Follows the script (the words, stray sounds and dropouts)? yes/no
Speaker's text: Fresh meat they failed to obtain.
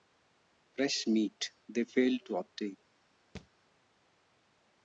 no